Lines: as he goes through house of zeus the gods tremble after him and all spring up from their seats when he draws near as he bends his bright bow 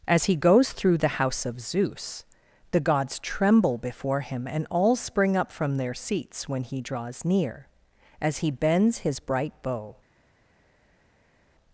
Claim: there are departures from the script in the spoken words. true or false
true